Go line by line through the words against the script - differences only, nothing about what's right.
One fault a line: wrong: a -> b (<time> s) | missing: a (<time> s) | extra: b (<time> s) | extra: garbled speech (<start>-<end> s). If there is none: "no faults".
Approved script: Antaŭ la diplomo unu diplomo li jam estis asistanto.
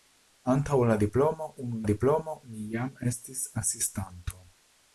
no faults